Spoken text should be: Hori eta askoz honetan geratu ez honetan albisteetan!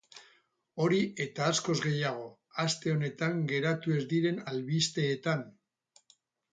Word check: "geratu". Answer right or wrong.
right